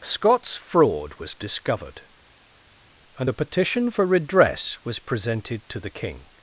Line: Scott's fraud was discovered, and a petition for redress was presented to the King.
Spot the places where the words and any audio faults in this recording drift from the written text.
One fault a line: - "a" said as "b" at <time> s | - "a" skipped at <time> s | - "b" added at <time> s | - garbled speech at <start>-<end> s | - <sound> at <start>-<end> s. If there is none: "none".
none